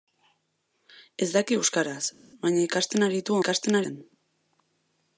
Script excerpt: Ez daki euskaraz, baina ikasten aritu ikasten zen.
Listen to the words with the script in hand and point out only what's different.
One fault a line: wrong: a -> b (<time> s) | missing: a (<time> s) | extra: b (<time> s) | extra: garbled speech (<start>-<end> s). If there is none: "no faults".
no faults